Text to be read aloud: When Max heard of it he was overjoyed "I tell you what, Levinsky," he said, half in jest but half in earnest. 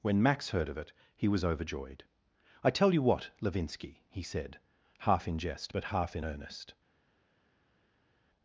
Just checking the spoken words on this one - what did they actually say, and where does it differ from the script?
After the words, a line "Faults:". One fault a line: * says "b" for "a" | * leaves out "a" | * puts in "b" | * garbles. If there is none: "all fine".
When Max heard of it he was overjoyed "I tell you what, Levinsky," he said, half in jest but half in earnest.
Faults:
all fine